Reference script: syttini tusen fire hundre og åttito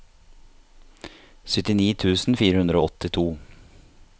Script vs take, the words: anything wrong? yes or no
no